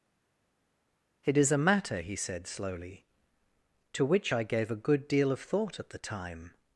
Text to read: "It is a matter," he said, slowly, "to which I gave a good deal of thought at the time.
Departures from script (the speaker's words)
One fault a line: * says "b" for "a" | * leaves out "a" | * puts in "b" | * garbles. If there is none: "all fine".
all fine